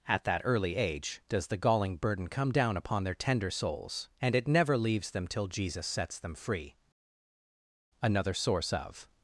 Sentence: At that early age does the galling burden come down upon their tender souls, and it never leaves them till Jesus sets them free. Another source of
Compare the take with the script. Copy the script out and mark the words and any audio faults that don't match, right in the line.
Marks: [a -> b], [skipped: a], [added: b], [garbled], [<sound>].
At that early age does the galling burden come down upon their tender souls, and it never leaves them till Jesus sets them free. Another source of